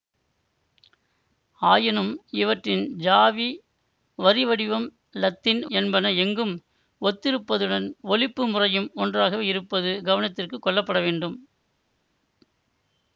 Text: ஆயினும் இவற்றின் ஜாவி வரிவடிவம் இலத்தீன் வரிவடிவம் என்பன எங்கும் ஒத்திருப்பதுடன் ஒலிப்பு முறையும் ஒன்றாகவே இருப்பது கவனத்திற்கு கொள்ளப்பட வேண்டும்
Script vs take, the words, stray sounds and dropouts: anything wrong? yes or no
yes